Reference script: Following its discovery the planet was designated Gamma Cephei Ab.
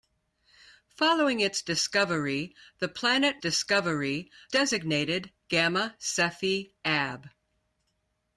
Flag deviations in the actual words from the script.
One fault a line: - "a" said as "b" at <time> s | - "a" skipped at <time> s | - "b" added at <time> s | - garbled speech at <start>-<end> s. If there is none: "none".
- "was" said as "discovery" at 3.4 s